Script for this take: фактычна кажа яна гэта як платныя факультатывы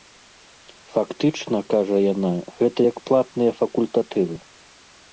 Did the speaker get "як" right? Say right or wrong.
right